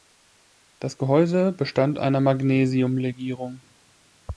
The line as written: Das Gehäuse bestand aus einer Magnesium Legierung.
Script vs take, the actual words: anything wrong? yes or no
yes